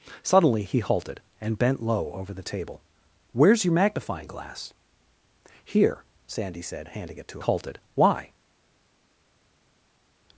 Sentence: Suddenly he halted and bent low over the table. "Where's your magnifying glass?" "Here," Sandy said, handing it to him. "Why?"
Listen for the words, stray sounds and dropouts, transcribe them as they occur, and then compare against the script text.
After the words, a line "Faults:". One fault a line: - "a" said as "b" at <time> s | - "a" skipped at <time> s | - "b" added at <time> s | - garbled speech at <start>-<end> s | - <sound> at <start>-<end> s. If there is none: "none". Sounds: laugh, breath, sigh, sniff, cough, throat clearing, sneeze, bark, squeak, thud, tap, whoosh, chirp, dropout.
Suddenly he halted and bent low over the table. "Where's your magnifying glass?" "Here," Sandy said, handing it to halted. "Why?"
Faults:
- "him" said as "halted" at 7.4 s